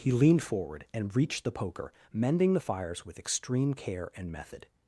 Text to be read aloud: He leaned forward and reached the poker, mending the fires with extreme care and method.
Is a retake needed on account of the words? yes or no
no